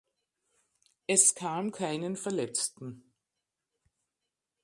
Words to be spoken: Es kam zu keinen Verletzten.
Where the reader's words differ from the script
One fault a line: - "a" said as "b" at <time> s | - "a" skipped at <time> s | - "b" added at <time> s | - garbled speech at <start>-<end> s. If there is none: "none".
- "zu" skipped at 1.7 s